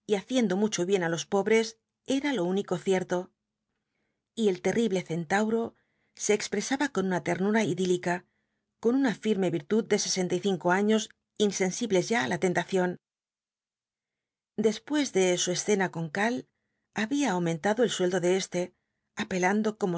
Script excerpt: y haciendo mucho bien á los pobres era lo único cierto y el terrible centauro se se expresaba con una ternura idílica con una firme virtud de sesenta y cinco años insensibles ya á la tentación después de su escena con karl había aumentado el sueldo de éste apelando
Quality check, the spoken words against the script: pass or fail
fail